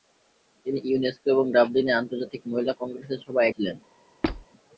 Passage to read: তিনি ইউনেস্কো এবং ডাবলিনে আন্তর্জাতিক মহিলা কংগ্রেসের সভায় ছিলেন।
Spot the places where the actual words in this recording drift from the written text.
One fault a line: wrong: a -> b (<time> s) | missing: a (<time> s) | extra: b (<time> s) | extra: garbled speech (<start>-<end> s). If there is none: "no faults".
no faults